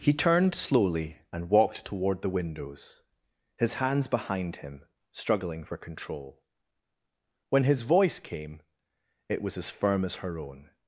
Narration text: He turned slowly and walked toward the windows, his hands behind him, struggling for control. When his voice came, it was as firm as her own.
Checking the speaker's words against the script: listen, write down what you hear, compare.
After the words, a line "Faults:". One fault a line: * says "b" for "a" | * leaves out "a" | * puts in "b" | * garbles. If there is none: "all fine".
He turned slowly and walked toward the windows, his hands behind him, struggling for control. When his voice came, it was as firm as her own.
Faults:
all fine